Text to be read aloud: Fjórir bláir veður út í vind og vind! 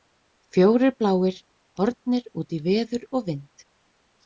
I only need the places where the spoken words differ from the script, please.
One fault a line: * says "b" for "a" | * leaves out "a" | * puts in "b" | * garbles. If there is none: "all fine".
* says "horfnir" for "veður"
* says "veður" for "vind"